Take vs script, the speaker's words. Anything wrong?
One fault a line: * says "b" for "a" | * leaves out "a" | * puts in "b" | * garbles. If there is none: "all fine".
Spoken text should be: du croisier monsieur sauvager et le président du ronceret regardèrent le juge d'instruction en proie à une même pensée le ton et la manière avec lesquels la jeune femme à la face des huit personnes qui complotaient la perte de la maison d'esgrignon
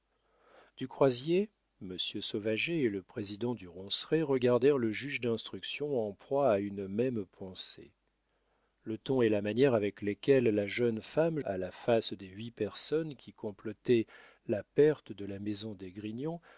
all fine